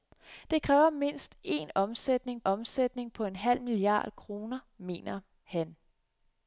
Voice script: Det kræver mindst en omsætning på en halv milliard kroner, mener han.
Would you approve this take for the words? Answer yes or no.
no